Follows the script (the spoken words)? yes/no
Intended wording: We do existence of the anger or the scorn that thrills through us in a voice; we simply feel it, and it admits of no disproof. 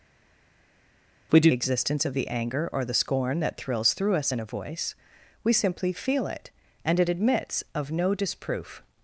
yes